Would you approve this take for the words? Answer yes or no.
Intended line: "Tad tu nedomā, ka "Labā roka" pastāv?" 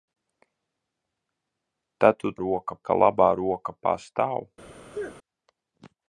no